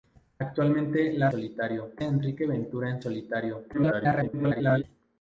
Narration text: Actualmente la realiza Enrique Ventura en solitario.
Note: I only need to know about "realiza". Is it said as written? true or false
false